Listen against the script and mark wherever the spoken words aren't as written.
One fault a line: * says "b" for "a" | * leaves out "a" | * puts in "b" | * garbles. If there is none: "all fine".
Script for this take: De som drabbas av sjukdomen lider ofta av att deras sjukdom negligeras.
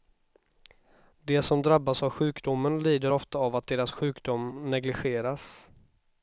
all fine